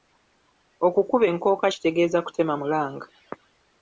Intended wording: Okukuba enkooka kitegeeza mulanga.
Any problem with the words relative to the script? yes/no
yes